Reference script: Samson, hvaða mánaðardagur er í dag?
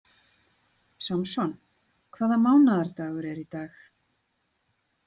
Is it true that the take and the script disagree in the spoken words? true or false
false